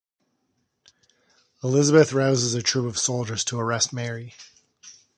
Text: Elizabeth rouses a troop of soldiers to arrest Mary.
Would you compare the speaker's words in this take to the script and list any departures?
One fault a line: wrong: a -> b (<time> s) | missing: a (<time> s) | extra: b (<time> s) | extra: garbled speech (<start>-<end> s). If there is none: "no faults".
no faults